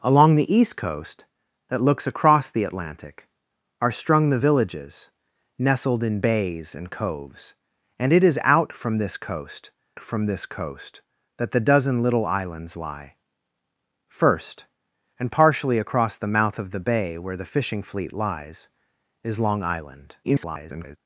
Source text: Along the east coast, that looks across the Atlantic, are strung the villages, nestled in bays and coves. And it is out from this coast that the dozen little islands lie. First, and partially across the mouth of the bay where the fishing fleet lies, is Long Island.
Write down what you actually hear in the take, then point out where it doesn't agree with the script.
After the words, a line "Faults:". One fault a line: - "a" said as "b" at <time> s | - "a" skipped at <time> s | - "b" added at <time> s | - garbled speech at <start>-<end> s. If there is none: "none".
Along the east coast, that looks across the Atlantic, are strung the villages, nestled in bays and coves. And it is out from this coast from this coast that the dozen little islands lie. First, and partially across the mouth of the bay where the fishing fleet lies, is Long Island. [garbled]
Faults:
- "from this coast" added at 10.0 s
- garbled speech at 20.2-21.0 s